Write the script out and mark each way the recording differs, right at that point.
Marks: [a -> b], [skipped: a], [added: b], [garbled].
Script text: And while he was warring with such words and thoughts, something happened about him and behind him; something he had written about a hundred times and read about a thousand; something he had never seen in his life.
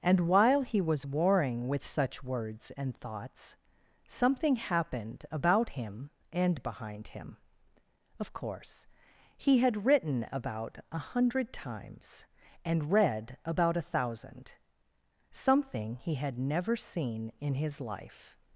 And while he was warring with such words and thoughts, something happened about him and behind him; [something -> of course] he had written about a hundred times and read about a thousand; something he had never seen in his life.